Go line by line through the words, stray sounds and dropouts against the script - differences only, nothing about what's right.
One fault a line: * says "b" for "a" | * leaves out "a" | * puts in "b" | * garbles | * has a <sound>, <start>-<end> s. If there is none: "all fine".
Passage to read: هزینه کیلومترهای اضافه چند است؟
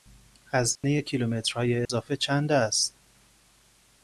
* has a dropout, 0.8-0.8 s
* has a dropout, 1.9-1.9 s